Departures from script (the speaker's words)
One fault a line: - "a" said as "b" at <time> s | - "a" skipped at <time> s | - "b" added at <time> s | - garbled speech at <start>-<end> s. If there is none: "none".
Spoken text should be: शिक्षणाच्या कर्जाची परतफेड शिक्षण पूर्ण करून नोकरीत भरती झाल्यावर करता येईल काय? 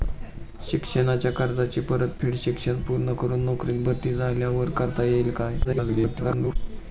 - garbled speech at 5.6-6.6 s